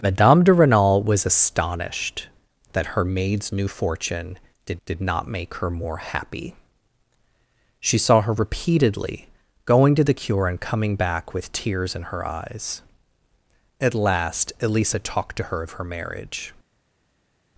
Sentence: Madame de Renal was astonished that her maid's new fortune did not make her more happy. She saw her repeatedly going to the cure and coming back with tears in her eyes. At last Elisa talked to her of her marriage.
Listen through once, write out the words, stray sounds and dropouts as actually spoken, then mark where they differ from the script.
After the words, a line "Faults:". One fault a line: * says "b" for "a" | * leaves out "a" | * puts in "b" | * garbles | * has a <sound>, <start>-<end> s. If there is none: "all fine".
Madame de Renal was astonished that her maid's new fortune did did not make her more happy. She saw her repeatedly going to the cure and coming back with tears in her eyes. At last Elisa talked to her of her marriage.
Faults:
* puts in "did"